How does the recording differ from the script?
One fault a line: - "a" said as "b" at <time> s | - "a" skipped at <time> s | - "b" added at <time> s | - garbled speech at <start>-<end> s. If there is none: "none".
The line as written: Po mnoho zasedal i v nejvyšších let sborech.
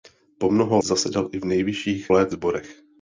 none